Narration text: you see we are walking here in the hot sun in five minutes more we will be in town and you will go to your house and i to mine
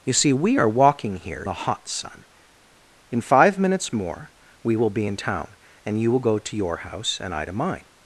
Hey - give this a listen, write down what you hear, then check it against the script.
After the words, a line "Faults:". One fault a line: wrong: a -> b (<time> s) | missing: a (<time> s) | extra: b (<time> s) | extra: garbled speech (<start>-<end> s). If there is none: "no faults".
you see we are walking here the hot sun in five minutes more we will be in town and you will go to your house and i to mine
Faults:
missing: in (1.4 s)